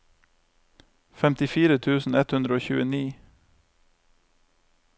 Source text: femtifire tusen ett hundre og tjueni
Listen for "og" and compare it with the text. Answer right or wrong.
right